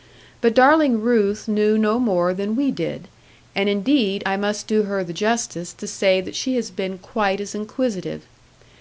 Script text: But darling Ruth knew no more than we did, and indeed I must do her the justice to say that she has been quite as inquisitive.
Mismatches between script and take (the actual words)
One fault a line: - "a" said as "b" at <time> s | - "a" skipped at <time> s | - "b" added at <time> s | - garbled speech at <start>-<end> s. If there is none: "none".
none